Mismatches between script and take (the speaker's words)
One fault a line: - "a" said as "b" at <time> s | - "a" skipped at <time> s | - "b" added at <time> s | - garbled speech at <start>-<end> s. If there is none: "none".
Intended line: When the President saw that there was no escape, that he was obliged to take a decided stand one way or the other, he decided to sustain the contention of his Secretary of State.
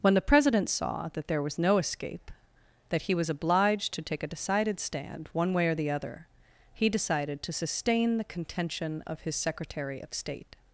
none